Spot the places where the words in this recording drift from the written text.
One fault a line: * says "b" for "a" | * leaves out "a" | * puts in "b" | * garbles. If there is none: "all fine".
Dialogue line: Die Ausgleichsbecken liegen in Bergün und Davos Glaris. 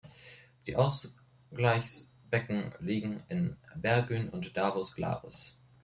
all fine